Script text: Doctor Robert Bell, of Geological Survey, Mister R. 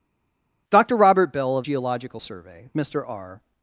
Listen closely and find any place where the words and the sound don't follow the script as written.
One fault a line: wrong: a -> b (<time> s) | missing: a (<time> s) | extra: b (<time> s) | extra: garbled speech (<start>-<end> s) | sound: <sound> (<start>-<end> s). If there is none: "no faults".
no faults